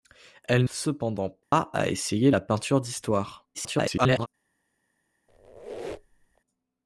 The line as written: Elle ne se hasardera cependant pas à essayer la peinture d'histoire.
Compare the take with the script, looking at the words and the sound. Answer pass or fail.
fail